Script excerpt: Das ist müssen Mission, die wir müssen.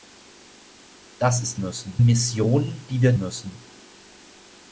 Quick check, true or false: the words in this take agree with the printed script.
true